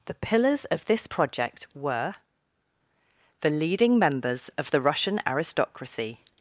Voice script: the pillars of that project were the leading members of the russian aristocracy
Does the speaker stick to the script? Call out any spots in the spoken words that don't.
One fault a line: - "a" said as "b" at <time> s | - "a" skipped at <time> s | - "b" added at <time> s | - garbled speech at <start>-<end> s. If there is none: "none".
- "that" said as "this" at 0.8 s